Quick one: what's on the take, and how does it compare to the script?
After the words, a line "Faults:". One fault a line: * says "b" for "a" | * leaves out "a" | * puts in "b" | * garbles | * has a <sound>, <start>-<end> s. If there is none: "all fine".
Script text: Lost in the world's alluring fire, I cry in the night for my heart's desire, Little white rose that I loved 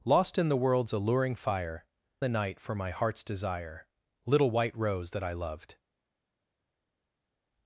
Lost in the world's alluring fire, the night for my heart's desire, Little white rose that I loved
Faults:
* leaves out "I cry in"